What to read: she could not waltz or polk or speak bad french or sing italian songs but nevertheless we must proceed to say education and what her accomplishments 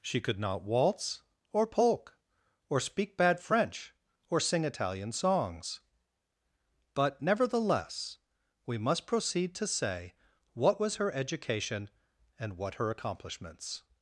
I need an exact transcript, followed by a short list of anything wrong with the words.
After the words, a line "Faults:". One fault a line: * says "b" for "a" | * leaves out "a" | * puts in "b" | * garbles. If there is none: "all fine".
she could not waltz or polk or speak bad french or sing italian songs but nevertheless we must proceed to say what was her education and what her accomplishments
Faults:
* puts in "what was her"